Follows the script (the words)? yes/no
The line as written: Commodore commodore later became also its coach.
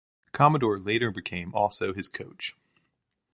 no